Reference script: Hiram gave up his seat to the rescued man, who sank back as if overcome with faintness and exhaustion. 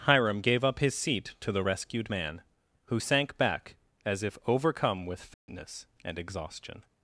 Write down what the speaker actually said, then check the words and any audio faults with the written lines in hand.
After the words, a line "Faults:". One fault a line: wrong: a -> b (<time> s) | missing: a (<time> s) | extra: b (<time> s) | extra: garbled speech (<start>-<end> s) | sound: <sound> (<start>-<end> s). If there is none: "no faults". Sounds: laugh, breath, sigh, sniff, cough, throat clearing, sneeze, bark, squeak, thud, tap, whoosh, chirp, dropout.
Hiram gave up his seat to the rescued man, who sank back as if overcome with faintness and exhaustion.
Faults:
sound: dropout (5.3-5.5 s)